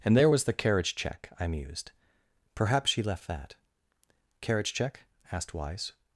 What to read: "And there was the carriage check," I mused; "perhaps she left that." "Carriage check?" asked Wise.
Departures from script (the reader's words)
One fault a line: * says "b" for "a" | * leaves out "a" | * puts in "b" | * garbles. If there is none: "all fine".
all fine